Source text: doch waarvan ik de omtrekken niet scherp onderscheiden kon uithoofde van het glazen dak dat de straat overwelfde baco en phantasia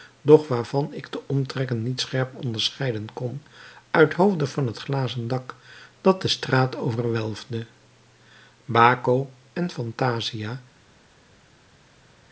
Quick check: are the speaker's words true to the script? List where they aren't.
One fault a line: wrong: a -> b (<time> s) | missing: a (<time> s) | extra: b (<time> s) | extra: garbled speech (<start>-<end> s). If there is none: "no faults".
no faults